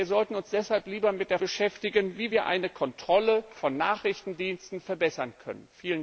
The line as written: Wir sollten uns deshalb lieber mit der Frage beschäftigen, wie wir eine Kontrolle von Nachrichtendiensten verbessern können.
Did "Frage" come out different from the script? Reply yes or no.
yes